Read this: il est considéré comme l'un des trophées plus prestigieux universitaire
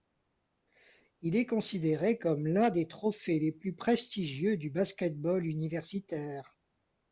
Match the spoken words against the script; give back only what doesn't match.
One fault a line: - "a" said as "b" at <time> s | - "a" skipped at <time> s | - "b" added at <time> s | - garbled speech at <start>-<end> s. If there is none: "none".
- "les" added at 3.4 s
- "du basket ball" added at 4.6 s